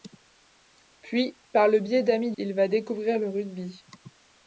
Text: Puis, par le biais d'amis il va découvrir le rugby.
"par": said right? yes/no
yes